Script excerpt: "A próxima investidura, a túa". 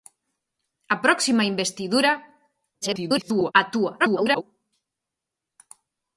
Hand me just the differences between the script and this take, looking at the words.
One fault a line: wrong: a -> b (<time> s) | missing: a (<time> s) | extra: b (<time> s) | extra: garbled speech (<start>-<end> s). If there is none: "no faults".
extra: garbled speech (2.8-3.5 s)
extra: garbled speech (4.0-4.4 s)